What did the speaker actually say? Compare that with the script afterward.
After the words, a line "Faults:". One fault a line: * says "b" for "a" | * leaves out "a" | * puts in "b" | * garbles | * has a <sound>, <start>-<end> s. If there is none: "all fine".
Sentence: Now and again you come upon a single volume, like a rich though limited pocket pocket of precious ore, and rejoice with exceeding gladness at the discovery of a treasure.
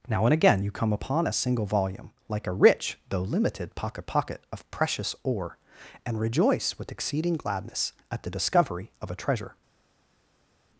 Now and again you come upon a single volume, like a rich though limited pocket pocket of precious ore, and rejoice with exceeding gladness at the discovery of a treasure.
Faults:
all fine